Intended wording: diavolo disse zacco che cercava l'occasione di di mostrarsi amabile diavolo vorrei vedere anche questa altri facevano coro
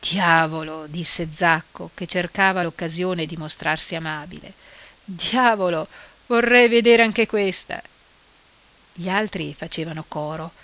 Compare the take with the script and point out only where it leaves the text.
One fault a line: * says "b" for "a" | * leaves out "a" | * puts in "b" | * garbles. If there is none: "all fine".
* leaves out "di"
* puts in "gli"